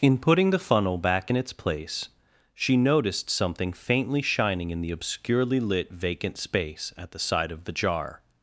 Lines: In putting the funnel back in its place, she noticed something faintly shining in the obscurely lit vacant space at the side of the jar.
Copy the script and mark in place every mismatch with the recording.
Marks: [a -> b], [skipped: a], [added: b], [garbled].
In putting the funnel back in its place, she noticed something faintly shining in the obscurely lit vacant space at the side of the jar.